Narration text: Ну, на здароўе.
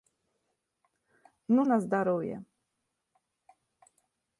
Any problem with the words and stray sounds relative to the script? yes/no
no